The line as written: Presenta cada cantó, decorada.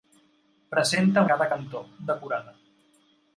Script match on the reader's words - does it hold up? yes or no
yes